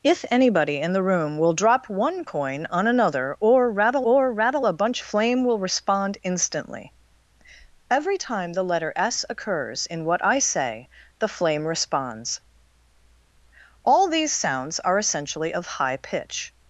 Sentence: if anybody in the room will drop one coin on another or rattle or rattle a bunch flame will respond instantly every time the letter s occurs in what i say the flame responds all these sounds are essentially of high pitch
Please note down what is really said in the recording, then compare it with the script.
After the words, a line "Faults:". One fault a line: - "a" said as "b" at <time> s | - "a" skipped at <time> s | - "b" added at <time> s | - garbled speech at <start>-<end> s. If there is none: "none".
if anybody in the room will drop one coin on another or rattle or rattle a bunch flame will respond instantly every time the letter s occurs in what i say the flame responds all these sounds are essentially of high pitch
Faults:
none